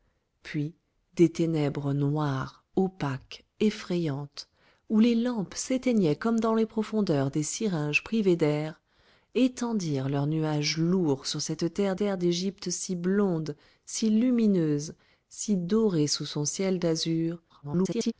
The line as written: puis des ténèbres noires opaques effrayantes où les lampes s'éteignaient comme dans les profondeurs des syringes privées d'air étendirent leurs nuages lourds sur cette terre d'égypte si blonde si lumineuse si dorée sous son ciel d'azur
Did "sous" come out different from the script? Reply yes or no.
no